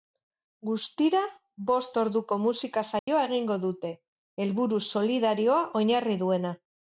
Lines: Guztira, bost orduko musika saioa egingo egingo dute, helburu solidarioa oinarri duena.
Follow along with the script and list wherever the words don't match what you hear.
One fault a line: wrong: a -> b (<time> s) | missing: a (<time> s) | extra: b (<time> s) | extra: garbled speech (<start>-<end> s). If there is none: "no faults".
missing: egingo (3.6 s)